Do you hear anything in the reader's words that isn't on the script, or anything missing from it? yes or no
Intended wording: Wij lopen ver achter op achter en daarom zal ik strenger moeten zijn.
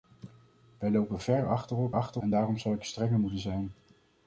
no